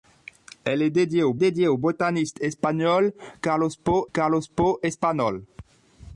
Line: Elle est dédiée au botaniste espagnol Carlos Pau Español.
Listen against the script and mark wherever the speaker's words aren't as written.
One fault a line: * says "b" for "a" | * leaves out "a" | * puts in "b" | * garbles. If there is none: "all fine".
* puts in "dédiée au"
* puts in "Carlos Pau"